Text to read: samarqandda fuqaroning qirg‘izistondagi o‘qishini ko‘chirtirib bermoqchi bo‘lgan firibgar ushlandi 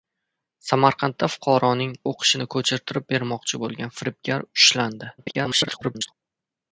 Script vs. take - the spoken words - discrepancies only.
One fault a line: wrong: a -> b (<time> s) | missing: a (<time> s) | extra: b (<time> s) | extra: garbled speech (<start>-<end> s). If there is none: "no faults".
missing: qirg‘izistondagi (1.9 s)
extra: garbled speech (5.2-6.1 s)